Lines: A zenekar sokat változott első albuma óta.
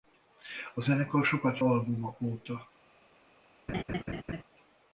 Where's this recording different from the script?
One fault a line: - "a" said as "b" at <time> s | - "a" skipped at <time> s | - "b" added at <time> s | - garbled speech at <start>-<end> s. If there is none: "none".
- "változott első" skipped at 1.6 s